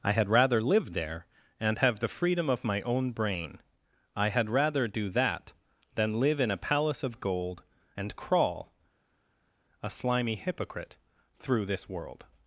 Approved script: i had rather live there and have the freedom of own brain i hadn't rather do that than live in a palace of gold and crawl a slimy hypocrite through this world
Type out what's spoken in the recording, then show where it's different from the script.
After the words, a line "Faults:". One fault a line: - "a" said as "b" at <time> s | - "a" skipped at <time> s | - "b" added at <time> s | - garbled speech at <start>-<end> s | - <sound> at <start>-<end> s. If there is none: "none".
i had rather live there and have the freedom of my own brain i had rather do that than live in a palace of gold and crawl a slimy hypocrite through this world
Faults:
- "my" added at 2.6 s
- "hadn't" said as "had" at 4.3 s